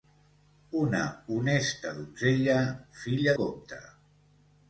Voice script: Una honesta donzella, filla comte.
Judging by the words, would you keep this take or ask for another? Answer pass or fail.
pass